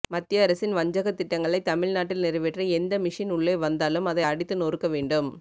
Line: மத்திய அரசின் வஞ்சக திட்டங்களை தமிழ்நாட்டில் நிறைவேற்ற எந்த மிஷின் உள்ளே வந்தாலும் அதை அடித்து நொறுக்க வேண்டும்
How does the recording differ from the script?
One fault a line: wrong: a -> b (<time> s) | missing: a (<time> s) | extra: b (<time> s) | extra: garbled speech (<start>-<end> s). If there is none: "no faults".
no faults